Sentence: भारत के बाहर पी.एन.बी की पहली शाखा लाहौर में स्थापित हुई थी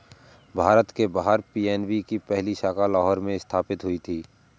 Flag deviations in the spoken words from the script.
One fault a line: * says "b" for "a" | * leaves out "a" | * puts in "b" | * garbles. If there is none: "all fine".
all fine